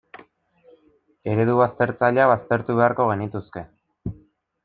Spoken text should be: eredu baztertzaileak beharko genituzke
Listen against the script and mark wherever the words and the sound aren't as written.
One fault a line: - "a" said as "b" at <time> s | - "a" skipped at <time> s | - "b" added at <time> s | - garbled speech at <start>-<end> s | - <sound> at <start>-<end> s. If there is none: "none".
- "baztertu" added at 2.3 s